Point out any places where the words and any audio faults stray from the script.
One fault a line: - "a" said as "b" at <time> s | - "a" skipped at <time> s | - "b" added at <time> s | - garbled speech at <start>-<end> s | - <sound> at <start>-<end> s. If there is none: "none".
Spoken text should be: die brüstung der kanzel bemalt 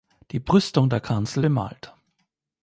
none